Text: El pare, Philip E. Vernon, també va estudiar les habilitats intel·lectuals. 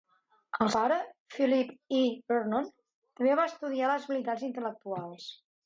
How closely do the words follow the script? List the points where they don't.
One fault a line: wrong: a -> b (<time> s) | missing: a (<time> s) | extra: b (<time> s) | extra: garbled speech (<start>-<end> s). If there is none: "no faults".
no faults